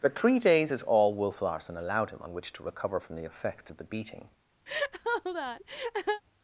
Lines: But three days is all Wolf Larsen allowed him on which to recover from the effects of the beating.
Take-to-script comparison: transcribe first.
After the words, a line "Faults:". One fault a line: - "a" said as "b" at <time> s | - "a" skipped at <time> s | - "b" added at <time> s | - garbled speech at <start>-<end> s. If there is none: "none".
But three days is all Wolf Larsen allowed him on which to recover from the effects of the beating.
Faults:
none